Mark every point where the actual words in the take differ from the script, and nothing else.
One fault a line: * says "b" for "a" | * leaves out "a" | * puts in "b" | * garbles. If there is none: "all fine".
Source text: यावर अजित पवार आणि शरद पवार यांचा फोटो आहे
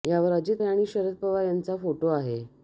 * leaves out "पवार"